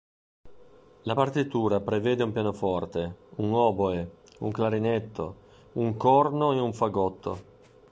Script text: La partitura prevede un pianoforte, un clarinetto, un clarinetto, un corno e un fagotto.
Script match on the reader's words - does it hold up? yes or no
no